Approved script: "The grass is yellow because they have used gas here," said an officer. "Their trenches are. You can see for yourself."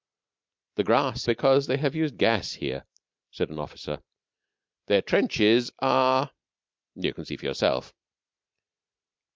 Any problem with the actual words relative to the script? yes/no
yes